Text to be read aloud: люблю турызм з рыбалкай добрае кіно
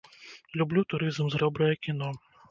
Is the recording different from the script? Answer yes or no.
yes